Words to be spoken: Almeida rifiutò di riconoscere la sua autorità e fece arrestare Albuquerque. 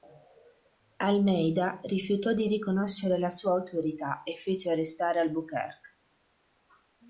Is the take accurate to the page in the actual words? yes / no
yes